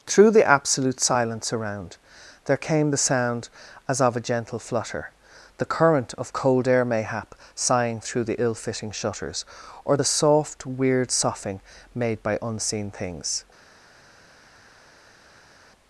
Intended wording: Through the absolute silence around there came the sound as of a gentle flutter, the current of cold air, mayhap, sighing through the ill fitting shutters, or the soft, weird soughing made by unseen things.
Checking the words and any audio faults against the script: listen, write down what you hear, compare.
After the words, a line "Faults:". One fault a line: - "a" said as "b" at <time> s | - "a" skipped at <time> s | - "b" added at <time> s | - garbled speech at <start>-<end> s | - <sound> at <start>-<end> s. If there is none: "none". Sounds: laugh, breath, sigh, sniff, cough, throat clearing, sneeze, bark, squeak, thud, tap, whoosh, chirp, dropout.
Through the absolute silence around there came the sound as of a gentle flutter, the current of cold air, mayhap, sighing through the ill fitting shutters, or the soft, weird soughing made by unseen things.
Faults:
none